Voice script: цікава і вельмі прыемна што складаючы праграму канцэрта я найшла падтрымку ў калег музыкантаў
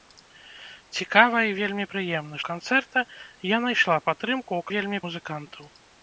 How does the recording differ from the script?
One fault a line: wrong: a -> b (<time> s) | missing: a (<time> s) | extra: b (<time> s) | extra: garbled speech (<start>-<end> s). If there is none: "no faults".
missing: што складаючы праграму (2.3 s)
wrong: калег -> вельмі (4.7 s)